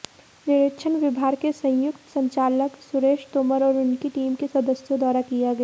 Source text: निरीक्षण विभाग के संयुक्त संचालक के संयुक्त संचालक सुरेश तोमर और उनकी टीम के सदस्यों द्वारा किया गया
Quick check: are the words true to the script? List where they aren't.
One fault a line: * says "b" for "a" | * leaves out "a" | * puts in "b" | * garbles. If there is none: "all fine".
* leaves out "के संयुक्त संचालक"